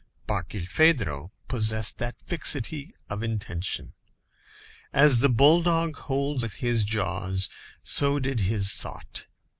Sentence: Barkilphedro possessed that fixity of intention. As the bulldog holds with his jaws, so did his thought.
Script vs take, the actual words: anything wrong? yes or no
no